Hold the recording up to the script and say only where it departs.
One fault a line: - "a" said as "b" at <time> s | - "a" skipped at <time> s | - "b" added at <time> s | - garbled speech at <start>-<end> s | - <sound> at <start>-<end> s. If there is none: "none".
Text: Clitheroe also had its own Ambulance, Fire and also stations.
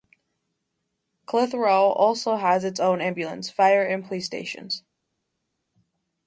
- "had" said as "has" at 2.4 s
- "also" said as "police" at 4.0 s